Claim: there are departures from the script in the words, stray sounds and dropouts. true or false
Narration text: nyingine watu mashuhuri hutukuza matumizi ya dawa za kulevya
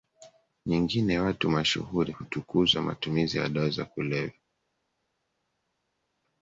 false